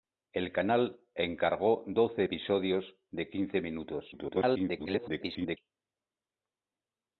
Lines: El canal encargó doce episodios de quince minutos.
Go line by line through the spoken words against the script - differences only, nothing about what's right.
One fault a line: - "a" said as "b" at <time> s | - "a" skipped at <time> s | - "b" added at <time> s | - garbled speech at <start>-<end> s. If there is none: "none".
- garbled speech at 4.1-5.6 s